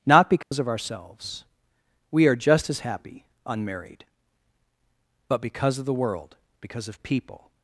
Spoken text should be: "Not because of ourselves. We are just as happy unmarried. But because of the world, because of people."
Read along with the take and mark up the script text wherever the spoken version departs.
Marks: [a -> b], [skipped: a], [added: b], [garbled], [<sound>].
"Not because [dropout] of ourselves. We are just as happy unmarried. But because of the world, because of people."